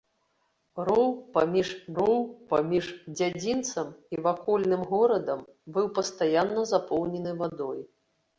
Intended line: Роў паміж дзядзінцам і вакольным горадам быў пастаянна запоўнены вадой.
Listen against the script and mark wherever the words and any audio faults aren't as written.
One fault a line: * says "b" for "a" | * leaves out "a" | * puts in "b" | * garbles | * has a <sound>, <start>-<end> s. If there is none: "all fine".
* puts in "роў паміж"